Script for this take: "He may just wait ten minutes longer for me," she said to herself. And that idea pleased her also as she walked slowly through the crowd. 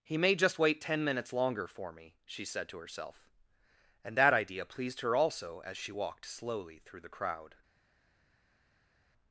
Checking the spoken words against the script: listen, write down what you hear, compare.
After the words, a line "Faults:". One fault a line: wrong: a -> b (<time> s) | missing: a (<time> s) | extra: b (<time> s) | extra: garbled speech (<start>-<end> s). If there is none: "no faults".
"He may just wait ten minutes longer for me," she said to herself. And that idea pleased her also as she walked slowly through the crowd.
Faults:
no faults